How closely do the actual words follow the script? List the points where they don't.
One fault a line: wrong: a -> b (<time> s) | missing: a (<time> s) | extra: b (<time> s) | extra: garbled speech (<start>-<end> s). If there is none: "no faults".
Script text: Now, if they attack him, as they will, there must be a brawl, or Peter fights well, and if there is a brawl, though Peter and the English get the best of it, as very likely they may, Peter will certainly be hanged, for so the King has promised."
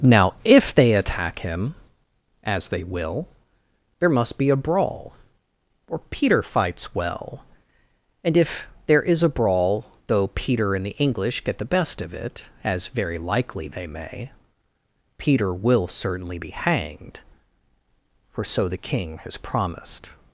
no faults